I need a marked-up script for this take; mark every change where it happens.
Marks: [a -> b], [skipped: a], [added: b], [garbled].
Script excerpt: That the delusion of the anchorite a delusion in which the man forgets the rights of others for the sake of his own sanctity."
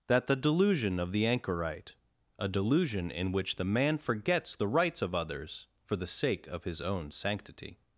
That the delusion of the anchorite a delusion in which the man forgets the rights of others for the sake of his own sanctity."